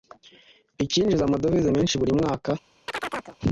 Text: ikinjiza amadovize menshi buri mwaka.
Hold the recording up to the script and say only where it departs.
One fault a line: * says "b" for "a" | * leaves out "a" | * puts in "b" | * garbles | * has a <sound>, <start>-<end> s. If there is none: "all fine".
* has a chirp, 2.9-3.4 s